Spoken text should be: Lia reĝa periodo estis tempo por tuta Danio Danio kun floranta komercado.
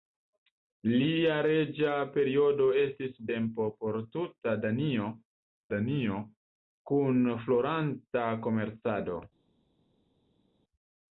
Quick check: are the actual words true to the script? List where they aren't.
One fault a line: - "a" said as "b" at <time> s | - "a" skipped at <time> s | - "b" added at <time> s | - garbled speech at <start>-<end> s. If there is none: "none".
none